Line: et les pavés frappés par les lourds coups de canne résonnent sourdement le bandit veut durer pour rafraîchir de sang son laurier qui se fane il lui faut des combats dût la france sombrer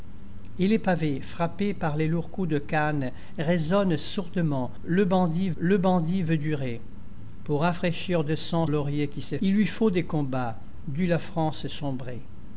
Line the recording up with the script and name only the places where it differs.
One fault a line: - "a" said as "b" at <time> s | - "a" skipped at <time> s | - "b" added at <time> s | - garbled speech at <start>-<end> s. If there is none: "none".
- "le bandit" added at 5.6 s
- "son" skipped at 8.7 s
- "fane" skipped at 9.4 s